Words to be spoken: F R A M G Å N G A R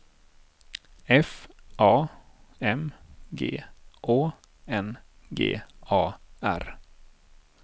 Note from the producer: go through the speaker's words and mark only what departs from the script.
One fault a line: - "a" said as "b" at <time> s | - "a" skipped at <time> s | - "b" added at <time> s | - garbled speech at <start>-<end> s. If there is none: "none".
- "R" skipped at 1.5 s